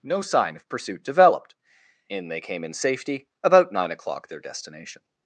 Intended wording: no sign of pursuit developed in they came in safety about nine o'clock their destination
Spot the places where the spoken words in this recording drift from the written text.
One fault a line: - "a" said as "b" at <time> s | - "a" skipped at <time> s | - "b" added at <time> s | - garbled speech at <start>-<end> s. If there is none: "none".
none